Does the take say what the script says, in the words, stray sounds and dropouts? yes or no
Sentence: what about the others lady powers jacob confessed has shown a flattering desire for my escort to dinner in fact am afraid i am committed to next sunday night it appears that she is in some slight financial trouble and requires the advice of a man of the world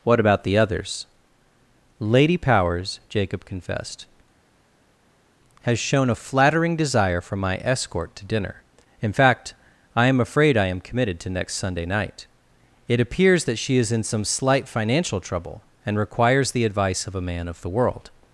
no